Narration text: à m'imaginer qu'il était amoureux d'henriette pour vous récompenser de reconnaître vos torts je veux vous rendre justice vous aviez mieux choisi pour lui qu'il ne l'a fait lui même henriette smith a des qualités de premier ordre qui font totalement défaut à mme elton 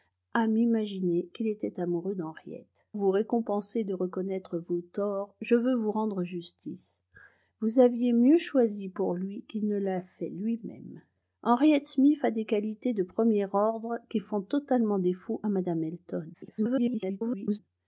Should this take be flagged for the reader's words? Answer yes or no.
yes